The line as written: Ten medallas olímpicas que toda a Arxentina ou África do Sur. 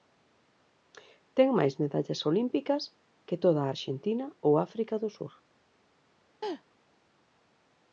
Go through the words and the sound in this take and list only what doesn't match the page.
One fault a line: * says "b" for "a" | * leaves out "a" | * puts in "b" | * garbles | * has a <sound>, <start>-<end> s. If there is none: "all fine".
* puts in "máis"
* has a laugh, 6.4-6.6 s